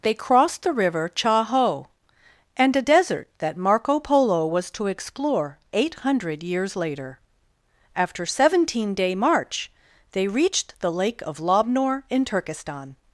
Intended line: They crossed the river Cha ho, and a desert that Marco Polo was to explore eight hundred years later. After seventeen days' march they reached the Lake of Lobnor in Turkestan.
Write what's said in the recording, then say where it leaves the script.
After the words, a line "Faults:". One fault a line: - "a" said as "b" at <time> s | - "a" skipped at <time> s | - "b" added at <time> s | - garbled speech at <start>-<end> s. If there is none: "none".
They crossed the river Cha ho, and a desert that Marco Polo was to explore eight hundred years later. After seventeen day' march they reached the Lake of Lobnor in Turkestan.
Faults:
- "days" said as "day" at 8.9 s